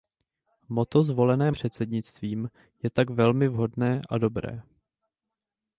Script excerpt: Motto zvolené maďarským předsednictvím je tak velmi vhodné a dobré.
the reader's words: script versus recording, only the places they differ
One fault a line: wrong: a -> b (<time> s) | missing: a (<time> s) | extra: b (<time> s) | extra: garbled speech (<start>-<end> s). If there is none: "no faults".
missing: maďarským (1.5 s)